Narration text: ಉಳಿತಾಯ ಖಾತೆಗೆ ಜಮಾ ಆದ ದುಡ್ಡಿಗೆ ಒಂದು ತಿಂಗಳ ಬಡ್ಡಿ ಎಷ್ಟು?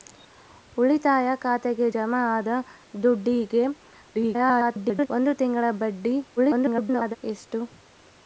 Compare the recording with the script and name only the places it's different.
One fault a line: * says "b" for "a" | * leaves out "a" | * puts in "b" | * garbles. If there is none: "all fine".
* garbles
* garbles